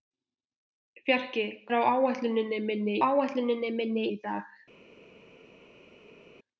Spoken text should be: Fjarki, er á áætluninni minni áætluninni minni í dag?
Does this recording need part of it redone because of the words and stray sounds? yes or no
no